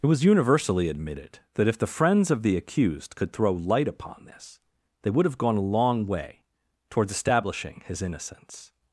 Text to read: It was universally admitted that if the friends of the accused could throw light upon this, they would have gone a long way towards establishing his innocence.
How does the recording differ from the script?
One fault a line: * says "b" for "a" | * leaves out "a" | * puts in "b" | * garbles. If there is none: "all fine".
all fine